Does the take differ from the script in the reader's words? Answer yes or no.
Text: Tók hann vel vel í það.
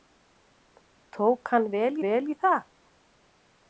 no